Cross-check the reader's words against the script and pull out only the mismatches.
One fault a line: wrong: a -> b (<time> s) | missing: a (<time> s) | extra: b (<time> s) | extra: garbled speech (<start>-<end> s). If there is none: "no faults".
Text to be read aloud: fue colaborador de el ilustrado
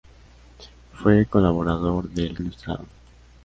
no faults